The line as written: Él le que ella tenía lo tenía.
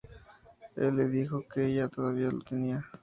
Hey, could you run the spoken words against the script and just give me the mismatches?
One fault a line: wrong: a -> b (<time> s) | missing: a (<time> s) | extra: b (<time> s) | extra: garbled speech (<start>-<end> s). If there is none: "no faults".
extra: dijo (1.1 s)
wrong: tenía -> todavía (1.8 s)